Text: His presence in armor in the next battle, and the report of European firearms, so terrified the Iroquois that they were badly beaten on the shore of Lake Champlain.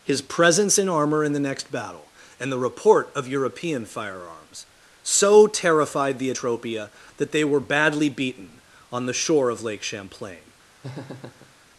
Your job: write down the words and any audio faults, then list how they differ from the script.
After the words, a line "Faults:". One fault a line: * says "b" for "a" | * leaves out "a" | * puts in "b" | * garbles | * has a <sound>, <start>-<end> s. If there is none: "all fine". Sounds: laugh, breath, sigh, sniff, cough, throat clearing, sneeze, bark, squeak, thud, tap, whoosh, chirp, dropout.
His presence in armor in the next battle, and the report of European firearms, so terrified the Atropia that they were badly beaten on the shore of Lake Champlain.
Faults:
* says "Atropia" for "Iroquois"
* has a laugh, 10.8-11.5 s